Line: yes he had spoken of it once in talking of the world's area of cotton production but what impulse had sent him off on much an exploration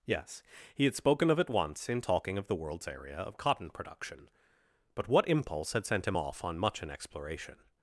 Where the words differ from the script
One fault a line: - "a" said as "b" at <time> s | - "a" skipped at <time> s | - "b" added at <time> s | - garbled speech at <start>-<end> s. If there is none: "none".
none